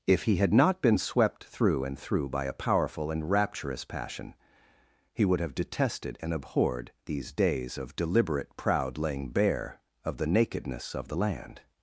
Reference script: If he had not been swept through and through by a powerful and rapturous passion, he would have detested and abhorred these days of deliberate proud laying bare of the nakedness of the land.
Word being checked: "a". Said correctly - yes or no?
yes